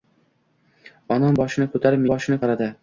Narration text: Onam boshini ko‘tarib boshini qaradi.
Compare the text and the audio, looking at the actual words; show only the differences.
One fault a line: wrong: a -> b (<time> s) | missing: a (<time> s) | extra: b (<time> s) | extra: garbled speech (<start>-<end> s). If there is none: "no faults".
no faults